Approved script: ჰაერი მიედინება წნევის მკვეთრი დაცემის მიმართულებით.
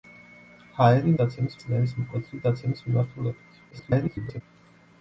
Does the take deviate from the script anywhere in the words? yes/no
yes